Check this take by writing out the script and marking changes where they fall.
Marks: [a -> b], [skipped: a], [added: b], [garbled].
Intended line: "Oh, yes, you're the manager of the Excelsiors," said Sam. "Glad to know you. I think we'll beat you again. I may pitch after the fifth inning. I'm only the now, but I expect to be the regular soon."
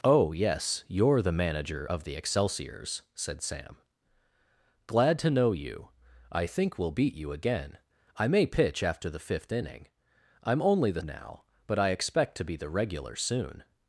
"Oh, yes, you're the manager of the Excelsiors," said Sam. "Glad to know you. I think we'll beat you again. I may pitch after the fifth inning. I'm only the now, but I expect to be the regular soon."